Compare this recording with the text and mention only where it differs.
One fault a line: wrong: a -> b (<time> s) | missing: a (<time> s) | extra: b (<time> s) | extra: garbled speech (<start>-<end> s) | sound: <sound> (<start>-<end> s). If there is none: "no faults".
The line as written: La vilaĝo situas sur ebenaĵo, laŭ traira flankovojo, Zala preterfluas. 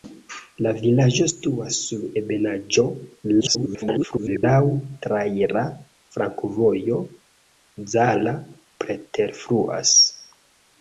extra: garbled speech (3.4-4.4 s)